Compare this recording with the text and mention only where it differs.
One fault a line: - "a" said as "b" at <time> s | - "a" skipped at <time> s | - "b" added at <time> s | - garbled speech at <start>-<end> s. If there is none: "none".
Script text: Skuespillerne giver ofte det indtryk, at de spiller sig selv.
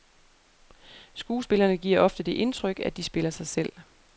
none